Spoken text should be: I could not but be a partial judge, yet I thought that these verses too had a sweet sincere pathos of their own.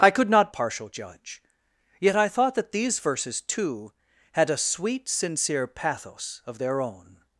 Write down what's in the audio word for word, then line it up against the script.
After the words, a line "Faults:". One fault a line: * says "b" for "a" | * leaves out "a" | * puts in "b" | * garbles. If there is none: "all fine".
I could not partial judge, yet I thought that these verses too had a sweet sincere pathos of their own.
Faults:
* leaves out "but be a"